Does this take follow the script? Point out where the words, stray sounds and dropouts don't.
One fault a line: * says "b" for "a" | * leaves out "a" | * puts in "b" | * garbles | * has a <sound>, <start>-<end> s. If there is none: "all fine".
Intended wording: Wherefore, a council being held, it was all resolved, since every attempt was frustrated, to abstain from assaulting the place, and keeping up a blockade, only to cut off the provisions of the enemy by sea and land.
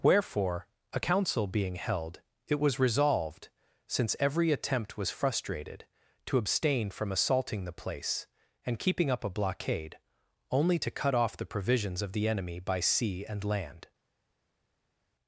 * leaves out "all"